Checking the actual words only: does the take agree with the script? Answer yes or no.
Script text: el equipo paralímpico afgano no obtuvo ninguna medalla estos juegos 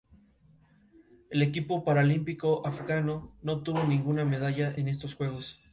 no